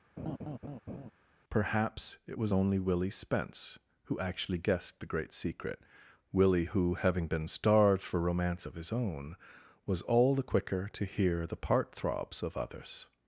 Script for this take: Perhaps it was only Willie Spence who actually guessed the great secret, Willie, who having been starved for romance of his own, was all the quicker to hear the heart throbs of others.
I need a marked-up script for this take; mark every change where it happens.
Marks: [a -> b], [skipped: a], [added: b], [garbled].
Perhaps it was only Willie Spence who actually guessed the great secret, Willie, who having been starved for romance of his own, was all the quicker to hear the [heart -> part] throbs of others.